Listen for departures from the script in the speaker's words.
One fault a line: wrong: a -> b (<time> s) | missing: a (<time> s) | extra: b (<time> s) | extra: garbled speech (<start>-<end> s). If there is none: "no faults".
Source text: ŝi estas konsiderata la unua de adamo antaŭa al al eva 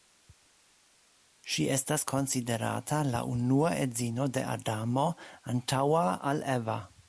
extra: edzino (3.9 s)
missing: al (6.4 s)